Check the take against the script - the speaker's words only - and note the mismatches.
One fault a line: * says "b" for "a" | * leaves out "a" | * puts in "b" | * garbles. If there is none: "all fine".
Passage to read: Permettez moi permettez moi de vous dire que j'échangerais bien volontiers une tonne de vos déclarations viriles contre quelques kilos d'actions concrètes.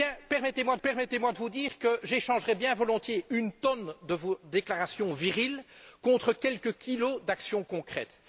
all fine